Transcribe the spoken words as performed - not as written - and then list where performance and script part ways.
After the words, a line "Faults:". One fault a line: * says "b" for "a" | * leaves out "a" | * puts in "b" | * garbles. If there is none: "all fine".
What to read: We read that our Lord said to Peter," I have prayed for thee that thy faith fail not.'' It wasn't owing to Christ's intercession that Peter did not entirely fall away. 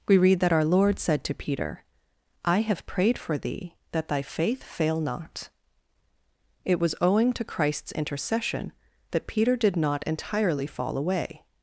We read that our Lord said to Peter," I have prayed for thee that thy faith fail not.'' It was owing to Christ's intercession that Peter did not entirely fall away.
Faults:
* says "was" for "wasn't"